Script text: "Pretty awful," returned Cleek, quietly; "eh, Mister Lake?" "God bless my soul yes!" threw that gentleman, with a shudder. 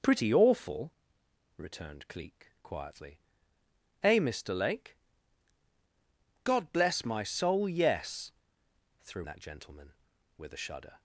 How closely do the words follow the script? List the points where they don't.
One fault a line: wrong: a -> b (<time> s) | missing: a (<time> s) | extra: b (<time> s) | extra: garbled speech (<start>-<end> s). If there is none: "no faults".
no faults